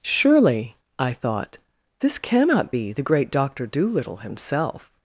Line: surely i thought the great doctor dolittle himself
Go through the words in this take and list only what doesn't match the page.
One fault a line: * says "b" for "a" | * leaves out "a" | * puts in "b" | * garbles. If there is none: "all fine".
* puts in "this cannot be"